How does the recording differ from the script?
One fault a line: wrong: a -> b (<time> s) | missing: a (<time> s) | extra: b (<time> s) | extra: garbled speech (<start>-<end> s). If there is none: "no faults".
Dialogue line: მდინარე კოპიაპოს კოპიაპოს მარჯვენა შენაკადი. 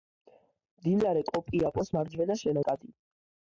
missing: კოპიაპოს (1.9 s)